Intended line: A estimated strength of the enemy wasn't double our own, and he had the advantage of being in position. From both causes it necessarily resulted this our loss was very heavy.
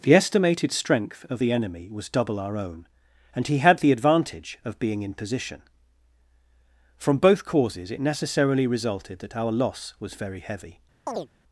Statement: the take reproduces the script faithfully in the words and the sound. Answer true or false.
false